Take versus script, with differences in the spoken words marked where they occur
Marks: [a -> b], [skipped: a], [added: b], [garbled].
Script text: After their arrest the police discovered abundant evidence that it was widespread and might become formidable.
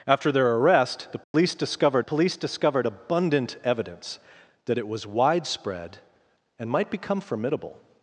After their arrest the police discovered [added: police discovered] abundant evidence that it was widespread and might become formidable.